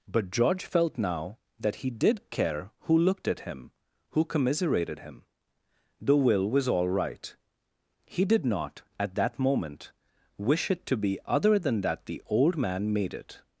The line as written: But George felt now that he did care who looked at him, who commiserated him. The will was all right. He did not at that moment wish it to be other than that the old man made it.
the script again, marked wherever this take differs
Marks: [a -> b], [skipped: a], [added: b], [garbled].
But George felt now that he did care who looked at him, who commiserated him. The will was all right. He did not at that moment wish it to be other than that the old man made it.